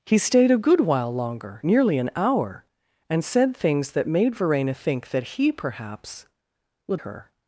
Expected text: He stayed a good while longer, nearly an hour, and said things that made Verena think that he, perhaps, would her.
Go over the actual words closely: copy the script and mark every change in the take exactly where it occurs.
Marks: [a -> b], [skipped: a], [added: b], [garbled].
He stayed a good while longer, nearly an hour, and said things that made Verena think that he, perhaps, would her.